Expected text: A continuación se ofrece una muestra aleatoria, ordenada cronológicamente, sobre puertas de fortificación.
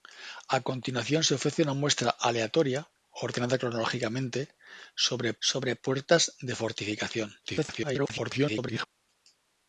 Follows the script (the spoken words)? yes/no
no